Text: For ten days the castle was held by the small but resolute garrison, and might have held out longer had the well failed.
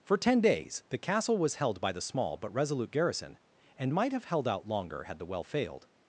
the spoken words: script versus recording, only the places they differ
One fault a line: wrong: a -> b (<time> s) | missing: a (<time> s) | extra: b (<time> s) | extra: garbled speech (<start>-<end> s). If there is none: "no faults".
no faults